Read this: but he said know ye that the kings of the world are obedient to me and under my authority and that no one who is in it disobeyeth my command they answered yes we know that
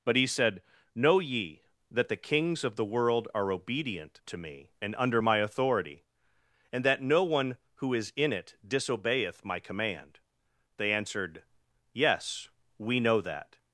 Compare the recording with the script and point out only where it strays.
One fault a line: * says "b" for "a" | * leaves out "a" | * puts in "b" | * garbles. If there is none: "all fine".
all fine